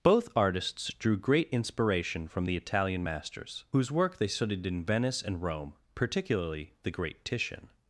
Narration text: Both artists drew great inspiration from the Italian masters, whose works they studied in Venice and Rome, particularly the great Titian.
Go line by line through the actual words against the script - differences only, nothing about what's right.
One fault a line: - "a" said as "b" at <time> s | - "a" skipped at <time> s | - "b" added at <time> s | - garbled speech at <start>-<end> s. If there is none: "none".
- "works" said as "work" at 3.9 s